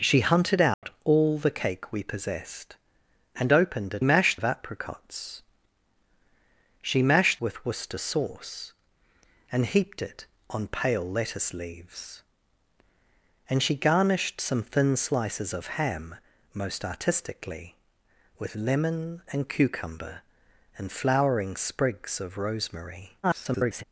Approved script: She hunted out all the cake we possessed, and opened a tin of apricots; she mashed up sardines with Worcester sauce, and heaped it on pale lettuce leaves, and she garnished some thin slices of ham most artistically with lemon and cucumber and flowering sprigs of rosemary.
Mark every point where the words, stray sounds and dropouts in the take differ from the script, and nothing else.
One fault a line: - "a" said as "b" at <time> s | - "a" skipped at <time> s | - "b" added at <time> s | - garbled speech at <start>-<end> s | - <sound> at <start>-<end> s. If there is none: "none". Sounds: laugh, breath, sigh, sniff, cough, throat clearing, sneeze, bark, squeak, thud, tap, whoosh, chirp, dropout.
- dropout at 0.7-0.8 s
- "tin" said as "mashed" at 4.0 s
- "up sardines" skipped at 7.4 s
- garbled speech at 23.2-23.8 s